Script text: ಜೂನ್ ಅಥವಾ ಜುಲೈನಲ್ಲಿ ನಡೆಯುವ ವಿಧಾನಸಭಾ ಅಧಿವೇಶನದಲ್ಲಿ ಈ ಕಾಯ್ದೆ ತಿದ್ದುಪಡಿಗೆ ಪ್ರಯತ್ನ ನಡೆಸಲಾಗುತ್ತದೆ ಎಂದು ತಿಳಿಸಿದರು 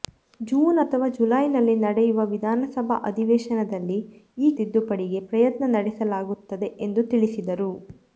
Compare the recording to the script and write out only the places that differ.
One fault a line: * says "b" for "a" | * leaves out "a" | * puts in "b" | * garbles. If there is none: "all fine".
* leaves out "ಕಾಯ್ದೆ"